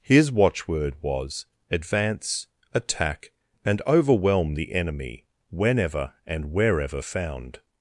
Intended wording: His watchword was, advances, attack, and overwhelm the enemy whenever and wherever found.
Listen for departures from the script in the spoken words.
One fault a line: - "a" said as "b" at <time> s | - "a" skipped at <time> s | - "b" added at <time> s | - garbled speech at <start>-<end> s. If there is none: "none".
- "advances" said as "advance" at 1.7 s